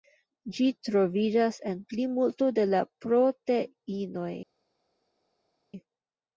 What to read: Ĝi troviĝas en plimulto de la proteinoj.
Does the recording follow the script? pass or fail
pass